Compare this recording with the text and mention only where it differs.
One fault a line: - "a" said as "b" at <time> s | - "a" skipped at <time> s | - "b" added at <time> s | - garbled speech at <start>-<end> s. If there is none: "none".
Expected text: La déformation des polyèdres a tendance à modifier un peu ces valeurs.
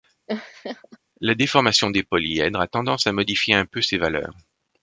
none